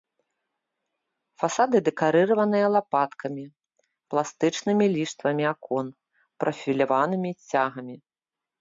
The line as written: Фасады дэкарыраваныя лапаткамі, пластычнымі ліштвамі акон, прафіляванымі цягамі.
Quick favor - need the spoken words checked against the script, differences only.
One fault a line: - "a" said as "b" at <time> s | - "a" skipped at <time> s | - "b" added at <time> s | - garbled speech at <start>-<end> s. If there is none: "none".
none